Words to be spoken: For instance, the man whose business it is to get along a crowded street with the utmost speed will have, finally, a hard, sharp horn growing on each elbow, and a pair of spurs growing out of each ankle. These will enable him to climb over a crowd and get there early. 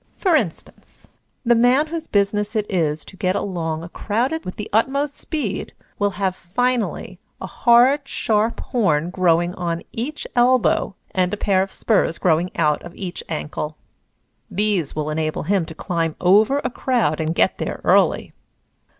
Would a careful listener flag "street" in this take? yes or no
yes